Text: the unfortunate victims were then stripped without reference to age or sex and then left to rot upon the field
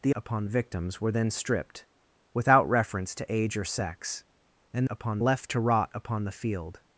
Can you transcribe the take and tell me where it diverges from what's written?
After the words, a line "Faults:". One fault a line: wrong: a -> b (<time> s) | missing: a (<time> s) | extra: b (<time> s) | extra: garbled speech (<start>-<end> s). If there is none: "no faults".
the upon victims were then stripped without reference to age or sex and upon left to rot upon the field
Faults:
wrong: unfortunate -> upon (0.1 s)
wrong: then -> upon (4.9 s)